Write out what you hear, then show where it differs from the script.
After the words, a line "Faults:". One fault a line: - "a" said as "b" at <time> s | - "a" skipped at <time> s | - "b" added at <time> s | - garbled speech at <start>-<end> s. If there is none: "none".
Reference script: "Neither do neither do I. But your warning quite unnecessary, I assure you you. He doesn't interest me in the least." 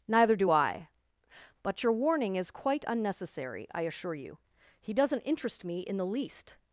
"Neither do I. But your warning is quite unnecessary, I assure you. He doesn't interest me in the least."
Faults:
- "neither do" skipped at 0.5 s
- "is" added at 2.3 s
- "you" skipped at 4.4 s